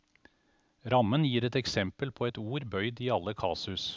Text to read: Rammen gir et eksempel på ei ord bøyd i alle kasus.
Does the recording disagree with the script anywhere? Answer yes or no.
yes